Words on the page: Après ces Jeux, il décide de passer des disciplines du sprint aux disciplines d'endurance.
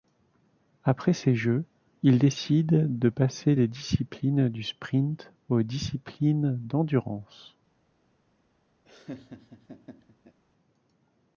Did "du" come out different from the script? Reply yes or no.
no